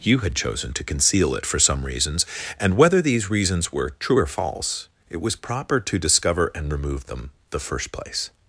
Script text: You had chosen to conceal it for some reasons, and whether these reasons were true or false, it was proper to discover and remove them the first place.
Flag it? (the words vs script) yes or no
no